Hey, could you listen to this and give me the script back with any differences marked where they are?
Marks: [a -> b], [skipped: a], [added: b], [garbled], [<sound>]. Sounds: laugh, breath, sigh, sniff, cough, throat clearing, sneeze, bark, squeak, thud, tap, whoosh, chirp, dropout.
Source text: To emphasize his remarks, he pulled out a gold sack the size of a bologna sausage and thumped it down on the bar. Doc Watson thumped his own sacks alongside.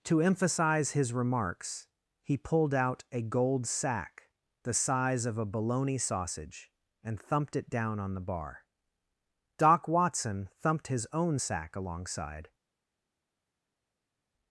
To emphasize his remarks, he pulled out a gold sack the size of a bologna sausage and thumped it down on the bar. Doc Watson thumped his own [sacks -> sack] alongside.